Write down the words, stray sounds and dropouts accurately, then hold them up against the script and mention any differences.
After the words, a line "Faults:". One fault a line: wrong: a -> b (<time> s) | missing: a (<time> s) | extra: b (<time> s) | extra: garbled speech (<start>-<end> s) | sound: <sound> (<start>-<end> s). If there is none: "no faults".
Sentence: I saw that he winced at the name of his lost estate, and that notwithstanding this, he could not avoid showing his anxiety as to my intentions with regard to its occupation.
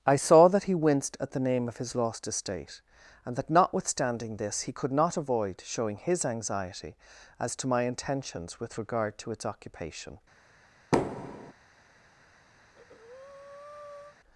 I saw that he winced at the name of his lost estate, and that notwithstanding this, he could not avoid showing his anxiety as to my intentions with regard to its occupation.
Faults:
sound: thud (10.9-11.5 s)
sound: breath (12.6-14.2 s)